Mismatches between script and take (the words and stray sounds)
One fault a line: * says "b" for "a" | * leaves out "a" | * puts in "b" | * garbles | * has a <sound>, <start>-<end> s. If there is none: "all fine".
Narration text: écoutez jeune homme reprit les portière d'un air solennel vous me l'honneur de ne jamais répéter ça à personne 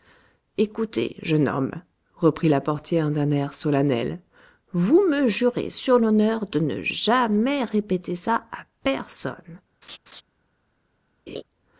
* says "la" for "les"
* puts in "jurez sur"
* has a laugh, 9.8-10.2 s
* has a laugh, 11.3-11.4 s